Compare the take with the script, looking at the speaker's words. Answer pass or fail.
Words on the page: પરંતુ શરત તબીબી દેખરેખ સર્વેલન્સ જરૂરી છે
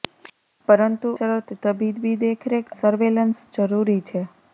pass